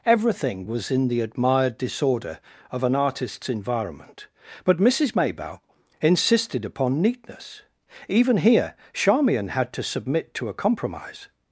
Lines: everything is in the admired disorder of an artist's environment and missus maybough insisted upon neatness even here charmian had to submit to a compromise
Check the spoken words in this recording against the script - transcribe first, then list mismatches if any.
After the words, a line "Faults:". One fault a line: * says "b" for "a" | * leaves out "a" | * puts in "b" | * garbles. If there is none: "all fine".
everything was in the admired disorder of an artist's environment but missus maybough insisted upon neatness even here charmian had to submit to a compromise
Faults:
* says "was" for "is"
* says "but" for "and"